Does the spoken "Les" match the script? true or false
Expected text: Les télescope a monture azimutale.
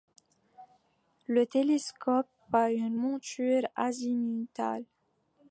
false